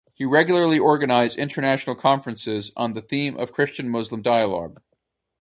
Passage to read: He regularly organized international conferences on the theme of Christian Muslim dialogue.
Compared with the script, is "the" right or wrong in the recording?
right